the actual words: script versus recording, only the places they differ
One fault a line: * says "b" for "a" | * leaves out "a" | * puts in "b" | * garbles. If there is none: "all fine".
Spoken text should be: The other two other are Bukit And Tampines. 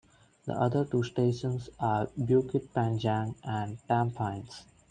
* says "stations" for "other"
* puts in "Panjang"